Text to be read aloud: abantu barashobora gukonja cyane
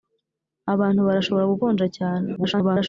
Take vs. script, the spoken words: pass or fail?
fail